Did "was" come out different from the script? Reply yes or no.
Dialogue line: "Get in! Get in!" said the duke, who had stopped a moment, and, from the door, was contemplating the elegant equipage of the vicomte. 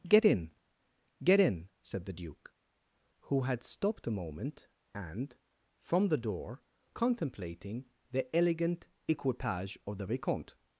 yes